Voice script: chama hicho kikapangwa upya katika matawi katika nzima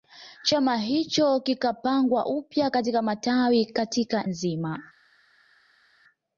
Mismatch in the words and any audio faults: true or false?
false